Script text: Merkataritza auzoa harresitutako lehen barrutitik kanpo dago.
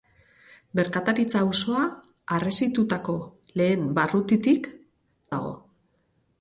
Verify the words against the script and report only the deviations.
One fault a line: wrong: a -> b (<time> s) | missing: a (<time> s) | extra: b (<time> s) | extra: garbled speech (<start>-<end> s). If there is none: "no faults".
missing: kanpo (4.7 s)